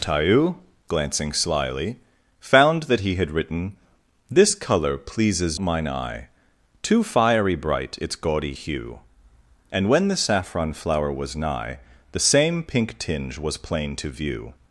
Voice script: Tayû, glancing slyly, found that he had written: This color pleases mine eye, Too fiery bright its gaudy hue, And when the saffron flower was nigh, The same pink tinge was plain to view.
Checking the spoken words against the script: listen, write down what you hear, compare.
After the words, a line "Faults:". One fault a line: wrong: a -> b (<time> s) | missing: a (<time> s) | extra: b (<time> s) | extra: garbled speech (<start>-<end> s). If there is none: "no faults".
Tayû, glancing slyly, found that he had written: This color pleases mine eye, Too fiery bright its gaudy hue, And when the saffron flower was nigh, The same pink tinge was plain to view.
Faults:
no faults